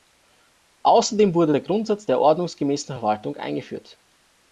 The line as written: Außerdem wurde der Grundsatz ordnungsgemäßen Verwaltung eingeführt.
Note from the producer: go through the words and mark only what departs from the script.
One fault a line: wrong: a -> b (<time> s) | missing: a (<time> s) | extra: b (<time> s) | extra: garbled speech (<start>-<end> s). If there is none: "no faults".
extra: der (2.0 s)